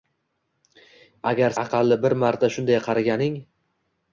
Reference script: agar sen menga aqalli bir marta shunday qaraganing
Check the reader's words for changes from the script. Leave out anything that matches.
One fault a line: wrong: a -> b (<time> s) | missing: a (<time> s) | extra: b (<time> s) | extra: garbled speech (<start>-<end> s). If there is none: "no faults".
missing: sen menga (1.6 s)